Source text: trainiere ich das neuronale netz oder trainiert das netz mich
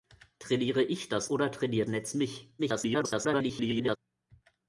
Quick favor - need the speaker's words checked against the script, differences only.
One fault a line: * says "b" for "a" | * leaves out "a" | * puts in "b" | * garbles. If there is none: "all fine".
* leaves out "neuronale netz"
* leaves out "das"
* garbles